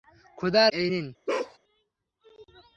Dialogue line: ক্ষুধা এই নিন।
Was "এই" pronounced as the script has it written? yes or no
yes